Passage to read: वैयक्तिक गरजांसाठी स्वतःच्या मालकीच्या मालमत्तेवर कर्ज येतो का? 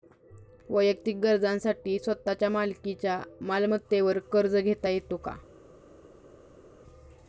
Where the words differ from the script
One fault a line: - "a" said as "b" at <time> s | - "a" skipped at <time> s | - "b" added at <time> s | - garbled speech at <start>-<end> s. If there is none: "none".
- "घेता" added at 4.5 s